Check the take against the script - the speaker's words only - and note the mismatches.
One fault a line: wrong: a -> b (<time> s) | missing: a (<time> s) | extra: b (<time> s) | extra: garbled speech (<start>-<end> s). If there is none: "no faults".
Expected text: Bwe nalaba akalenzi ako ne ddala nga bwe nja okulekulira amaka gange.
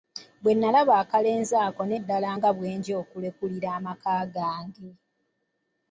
no faults